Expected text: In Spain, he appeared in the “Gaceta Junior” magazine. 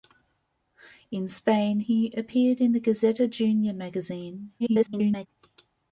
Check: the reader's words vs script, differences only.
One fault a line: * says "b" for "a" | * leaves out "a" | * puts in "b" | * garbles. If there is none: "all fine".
* garbles